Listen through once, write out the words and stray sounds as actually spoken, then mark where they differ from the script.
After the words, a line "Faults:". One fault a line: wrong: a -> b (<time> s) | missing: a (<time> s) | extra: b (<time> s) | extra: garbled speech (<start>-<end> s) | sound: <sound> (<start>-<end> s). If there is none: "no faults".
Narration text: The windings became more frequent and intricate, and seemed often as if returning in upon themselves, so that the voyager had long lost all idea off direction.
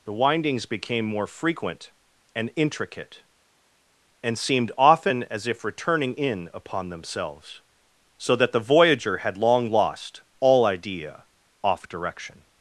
The windings became more frequent and intricate, and seemed often as if returning in upon themselves, so that the voyager had long lost all idea off direction.
Faults:
no faults